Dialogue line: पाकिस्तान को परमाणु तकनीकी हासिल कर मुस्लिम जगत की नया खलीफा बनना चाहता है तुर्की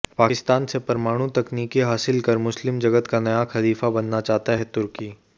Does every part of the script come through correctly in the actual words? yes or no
no